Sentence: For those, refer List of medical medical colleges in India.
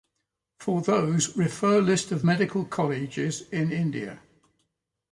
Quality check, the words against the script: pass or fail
fail